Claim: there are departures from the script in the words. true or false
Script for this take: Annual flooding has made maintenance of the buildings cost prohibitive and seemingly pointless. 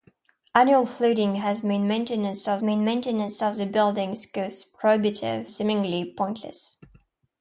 true